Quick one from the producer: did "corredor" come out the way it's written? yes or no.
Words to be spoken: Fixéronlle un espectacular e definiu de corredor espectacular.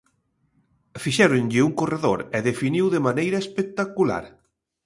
no